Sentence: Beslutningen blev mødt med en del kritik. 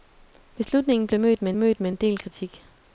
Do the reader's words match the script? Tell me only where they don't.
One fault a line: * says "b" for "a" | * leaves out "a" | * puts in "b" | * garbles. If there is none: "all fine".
* puts in "mødt med"